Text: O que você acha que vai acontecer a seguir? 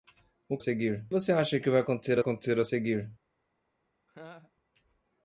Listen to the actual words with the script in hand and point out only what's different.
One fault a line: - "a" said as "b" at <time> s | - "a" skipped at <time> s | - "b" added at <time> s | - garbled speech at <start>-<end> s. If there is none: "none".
- "que" said as "seguir" at 0.6 s
- "acontecer" added at 2.2 s